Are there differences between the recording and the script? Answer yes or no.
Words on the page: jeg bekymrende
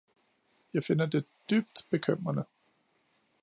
yes